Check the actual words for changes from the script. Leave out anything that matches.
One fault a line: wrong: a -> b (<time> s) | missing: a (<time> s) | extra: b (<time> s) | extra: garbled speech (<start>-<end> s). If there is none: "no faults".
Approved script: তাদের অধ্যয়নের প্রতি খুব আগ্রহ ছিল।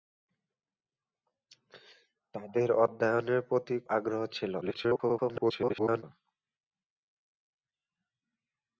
missing: খুব (3.8 s)
extra: garbled speech (4.6-6.0 s)